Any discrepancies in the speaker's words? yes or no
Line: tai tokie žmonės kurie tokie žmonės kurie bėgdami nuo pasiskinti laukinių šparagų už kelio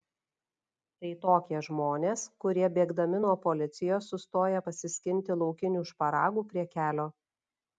yes